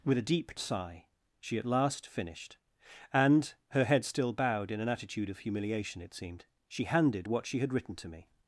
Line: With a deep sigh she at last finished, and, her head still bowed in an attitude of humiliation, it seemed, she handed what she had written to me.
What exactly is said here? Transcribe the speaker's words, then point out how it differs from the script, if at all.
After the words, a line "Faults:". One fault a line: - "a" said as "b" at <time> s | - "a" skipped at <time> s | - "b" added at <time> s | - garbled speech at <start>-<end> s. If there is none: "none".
With a deep sigh she at last finished, and, her head still bowed in an attitude of humiliation, it seemed, she handed what she had written to me.
Faults:
none